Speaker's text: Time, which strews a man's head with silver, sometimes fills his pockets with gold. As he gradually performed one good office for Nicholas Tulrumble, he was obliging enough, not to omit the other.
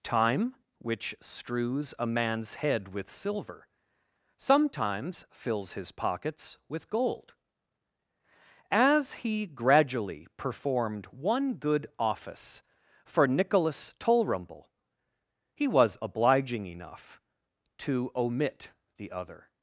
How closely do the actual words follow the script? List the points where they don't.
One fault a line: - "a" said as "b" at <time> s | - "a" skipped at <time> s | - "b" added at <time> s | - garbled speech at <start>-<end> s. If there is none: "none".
- "not" skipped at 17.2 s